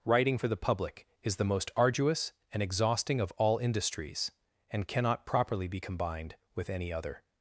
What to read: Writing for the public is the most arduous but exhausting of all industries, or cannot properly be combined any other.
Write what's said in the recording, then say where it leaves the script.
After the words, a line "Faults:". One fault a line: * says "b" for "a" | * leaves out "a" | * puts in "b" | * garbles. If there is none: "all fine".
Writing for the public is the most arduous and exhausting of all industries, and cannot properly be combined with any other.
Faults:
* says "and" for "but"
* says "and" for "or"
* puts in "with"